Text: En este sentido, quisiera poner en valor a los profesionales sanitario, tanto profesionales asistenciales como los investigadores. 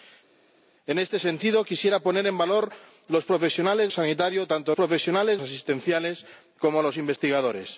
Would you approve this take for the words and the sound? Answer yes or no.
yes